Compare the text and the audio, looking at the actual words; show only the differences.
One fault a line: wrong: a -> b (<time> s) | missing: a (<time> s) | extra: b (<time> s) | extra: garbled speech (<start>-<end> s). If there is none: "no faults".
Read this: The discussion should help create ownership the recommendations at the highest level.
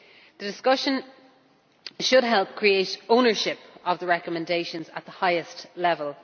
extra: of (3.9 s)